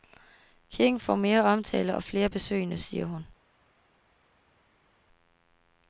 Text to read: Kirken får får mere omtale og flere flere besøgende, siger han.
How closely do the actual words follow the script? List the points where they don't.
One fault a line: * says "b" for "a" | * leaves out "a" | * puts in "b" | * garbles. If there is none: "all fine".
* leaves out "får"
* leaves out "flere"
* says "hun" for "han"